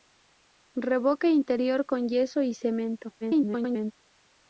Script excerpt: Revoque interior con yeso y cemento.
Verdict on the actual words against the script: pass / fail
fail